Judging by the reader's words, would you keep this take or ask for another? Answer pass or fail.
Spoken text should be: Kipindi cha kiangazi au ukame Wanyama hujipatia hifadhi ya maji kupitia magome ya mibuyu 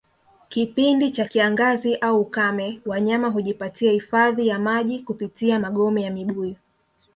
pass